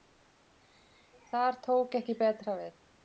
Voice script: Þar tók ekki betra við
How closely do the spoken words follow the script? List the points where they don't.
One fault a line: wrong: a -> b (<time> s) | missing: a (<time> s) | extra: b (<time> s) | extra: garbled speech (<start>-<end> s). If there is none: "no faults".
no faults